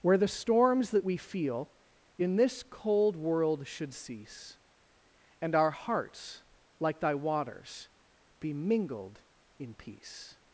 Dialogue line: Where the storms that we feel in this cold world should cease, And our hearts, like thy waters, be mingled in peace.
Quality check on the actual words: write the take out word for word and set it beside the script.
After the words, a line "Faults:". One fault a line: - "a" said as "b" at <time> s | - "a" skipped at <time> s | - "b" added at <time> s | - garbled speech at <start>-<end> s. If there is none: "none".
Where the storms that we feel in this cold world should cease, And our hearts, like thy waters, be mingled in peace.
Faults:
none